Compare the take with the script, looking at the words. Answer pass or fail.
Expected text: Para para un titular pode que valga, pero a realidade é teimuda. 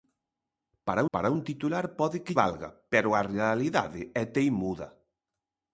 pass